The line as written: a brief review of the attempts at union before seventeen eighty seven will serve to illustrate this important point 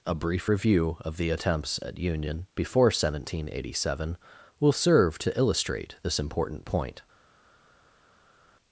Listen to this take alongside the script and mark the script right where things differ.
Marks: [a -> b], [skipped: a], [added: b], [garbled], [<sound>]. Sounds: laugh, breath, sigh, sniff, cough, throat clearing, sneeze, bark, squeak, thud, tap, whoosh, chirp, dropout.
a brief review of the attempts at union before seventeen eighty seven will serve to illustrate this important point